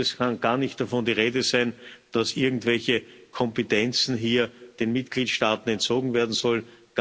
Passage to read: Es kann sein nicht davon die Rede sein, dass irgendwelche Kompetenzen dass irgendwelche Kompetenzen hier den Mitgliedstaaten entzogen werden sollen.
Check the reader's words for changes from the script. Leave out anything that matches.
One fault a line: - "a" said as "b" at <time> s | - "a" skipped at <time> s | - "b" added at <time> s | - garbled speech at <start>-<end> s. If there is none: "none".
- "sein" said as "gar" at 0.4 s
- "dass irgendwelche Kompetenzen" skipped at 4.2 s